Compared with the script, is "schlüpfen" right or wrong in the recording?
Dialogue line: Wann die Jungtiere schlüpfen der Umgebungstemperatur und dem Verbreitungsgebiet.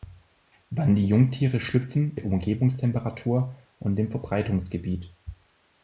right